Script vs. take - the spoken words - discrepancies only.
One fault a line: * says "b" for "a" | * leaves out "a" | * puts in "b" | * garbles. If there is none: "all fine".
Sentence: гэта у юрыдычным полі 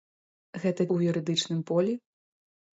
all fine